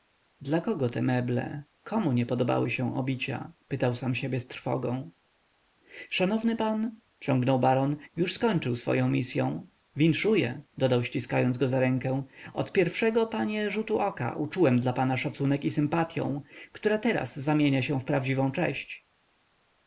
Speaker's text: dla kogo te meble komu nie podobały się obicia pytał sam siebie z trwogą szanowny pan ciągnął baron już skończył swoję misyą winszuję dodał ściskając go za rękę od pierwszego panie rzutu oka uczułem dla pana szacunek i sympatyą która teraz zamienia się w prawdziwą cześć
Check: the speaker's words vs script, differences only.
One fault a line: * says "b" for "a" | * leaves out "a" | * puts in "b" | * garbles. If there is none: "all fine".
all fine